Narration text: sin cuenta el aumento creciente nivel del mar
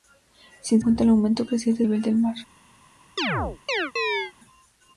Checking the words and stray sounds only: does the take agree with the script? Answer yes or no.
no